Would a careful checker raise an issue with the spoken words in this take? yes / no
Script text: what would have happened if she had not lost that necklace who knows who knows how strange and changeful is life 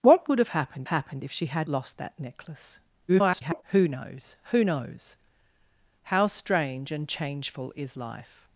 yes